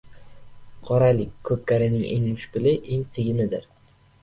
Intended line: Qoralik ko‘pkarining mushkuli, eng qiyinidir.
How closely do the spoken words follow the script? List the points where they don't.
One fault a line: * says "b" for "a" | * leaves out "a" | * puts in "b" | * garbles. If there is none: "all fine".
* puts in "eng"